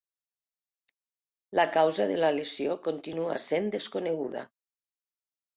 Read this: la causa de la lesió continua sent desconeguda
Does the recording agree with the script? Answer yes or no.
yes